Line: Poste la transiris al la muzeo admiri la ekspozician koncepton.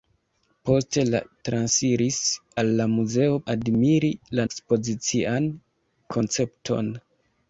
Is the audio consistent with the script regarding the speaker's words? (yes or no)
yes